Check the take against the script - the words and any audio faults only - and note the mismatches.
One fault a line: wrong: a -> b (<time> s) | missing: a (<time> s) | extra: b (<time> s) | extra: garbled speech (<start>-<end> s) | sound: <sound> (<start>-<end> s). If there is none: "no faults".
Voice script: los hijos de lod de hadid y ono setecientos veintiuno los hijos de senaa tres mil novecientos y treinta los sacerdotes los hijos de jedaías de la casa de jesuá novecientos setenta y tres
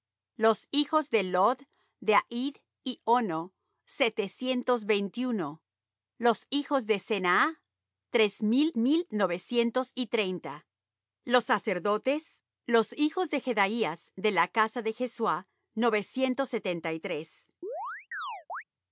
extra: mil (8.8 s)
sound: chirp (17.6-18.6 s)